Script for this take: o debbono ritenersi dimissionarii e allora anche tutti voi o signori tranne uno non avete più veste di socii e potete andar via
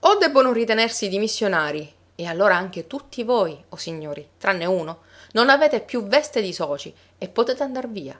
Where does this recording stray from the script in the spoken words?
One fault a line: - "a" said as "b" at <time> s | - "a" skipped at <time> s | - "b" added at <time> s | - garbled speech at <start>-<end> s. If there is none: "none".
none